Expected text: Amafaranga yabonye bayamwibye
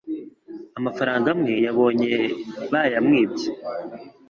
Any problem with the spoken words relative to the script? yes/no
yes